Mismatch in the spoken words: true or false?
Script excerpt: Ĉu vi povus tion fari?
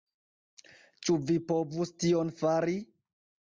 false